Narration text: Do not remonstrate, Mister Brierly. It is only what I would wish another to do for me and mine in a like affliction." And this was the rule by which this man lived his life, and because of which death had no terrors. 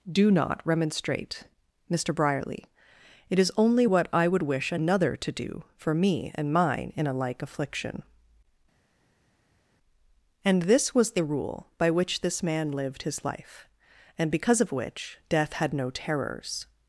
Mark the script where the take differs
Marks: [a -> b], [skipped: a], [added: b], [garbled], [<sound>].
Do not remonstrate, Mister Brierly. It is only what I would wish another to do for me and mine in a like affliction." And this was the rule by which this man lived his life, and because of which death had no terrors.